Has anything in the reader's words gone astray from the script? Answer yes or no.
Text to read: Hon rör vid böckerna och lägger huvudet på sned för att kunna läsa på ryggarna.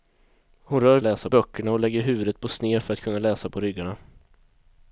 yes